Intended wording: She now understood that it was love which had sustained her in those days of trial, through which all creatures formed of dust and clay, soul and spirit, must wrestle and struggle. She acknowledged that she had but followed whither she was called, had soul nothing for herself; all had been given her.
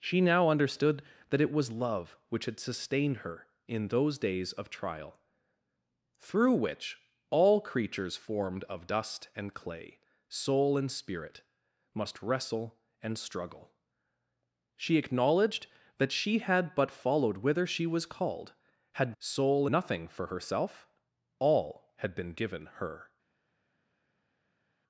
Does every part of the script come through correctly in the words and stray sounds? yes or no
yes